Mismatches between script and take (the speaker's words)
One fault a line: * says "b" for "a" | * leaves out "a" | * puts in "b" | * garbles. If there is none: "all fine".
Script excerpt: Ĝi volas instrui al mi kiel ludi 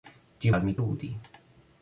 * leaves out "volas instrui"
* leaves out "kiel"